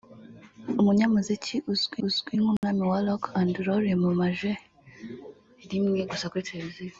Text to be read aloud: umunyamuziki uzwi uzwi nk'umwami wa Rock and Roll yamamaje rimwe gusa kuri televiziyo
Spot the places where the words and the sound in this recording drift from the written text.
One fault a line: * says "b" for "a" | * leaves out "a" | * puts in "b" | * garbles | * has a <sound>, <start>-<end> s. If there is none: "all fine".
* has a dropout, 2.6-2.6 s